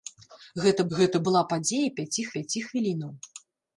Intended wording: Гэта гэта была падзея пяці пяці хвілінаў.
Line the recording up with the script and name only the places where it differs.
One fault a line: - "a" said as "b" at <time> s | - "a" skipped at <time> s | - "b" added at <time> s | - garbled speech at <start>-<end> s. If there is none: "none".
none